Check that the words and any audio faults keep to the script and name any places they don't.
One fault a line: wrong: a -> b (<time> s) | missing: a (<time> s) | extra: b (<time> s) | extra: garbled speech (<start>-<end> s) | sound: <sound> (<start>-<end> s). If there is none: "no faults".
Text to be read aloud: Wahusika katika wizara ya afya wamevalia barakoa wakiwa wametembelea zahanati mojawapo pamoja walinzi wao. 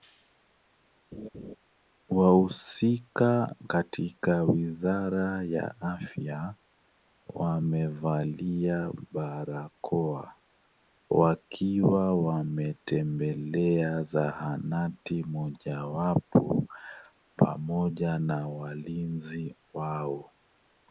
sound: laugh (1.1-1.6 s)
extra: na (18.2 s)